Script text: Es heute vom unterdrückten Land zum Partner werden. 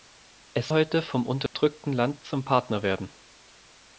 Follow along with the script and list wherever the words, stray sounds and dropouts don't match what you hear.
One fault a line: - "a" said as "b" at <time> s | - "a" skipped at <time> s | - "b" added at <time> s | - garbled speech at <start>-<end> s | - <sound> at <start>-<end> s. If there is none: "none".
- dropout at 1.5-1.5 s